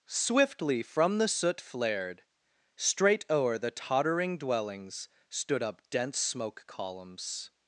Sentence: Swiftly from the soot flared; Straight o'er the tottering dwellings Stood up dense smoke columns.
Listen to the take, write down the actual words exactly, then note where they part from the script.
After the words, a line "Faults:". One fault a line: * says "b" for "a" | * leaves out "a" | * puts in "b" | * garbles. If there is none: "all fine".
Swiftly from the soot flared; Straight o'er the tottering dwellings Stood up dense smoke columns.
Faults:
all fine